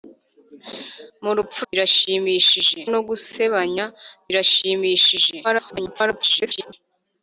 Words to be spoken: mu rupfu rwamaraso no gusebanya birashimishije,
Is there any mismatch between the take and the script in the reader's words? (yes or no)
yes